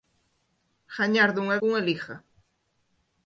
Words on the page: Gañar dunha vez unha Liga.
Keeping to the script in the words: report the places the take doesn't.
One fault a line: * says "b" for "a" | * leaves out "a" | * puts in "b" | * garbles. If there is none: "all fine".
* leaves out "vez"